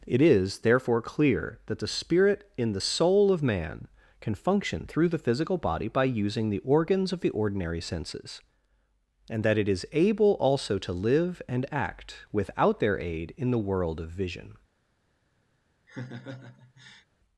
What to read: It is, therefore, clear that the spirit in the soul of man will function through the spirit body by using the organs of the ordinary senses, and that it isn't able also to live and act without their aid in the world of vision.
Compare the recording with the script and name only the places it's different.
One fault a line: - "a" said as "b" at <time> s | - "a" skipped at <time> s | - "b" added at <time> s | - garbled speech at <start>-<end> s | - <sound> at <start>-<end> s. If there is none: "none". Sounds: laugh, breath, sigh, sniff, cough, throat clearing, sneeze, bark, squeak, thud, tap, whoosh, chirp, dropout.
- "will" said as "can" at 4.2 s
- "spirit" said as "physical" at 5.2 s
- "isn't" said as "is" at 9.7 s
- laugh at 15.9-17.1 s